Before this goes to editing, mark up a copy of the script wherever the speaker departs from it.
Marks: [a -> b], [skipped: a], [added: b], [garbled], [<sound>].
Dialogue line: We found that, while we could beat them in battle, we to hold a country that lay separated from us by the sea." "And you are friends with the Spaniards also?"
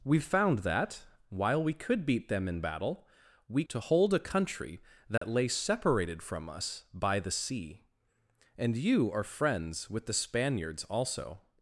We found that, while we could beat them in battle, we to hold a country that [dropout] lay separated from us by the sea." "And you are friends with the Spaniards also?"